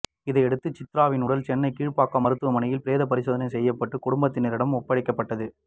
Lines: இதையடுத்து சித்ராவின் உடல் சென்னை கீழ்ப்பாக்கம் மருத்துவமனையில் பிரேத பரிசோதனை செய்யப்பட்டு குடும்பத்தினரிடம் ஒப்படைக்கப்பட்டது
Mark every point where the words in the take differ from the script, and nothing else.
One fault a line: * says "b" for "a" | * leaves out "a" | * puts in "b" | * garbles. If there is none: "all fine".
all fine